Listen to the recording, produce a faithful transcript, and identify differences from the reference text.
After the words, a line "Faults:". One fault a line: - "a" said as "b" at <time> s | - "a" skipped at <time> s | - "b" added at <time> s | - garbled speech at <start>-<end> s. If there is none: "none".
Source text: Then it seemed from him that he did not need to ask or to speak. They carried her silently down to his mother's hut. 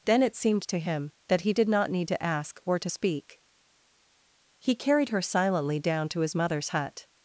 Then it seemed to him that he did not need to ask or to speak. He carried her silently down to his mother's hut.
Faults:
- "from" said as "to" at 0.7 s
- "They" said as "He" at 4.6 s